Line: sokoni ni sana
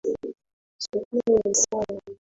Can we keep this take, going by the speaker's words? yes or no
yes